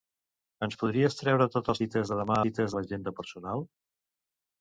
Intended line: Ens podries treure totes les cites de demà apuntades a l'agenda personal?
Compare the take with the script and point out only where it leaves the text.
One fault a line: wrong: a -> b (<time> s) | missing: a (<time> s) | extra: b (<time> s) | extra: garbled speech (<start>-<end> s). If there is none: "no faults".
missing: les (1.8 s)
wrong: apuntades -> cites (2.4 s)